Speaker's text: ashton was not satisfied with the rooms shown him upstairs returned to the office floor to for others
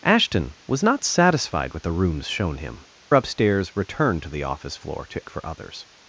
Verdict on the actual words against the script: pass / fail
pass